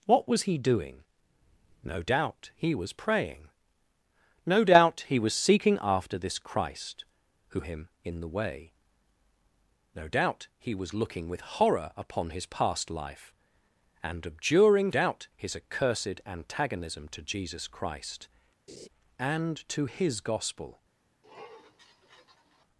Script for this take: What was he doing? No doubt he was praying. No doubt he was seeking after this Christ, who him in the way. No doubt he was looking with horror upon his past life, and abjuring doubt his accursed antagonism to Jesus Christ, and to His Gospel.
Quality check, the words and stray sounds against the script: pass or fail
fail